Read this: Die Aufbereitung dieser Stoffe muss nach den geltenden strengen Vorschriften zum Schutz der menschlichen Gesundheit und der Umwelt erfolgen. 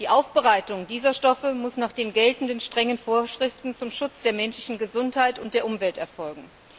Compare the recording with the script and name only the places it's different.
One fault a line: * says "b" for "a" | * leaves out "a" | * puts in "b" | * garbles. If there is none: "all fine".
all fine